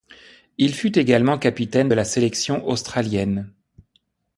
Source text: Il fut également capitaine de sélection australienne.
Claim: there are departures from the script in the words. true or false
true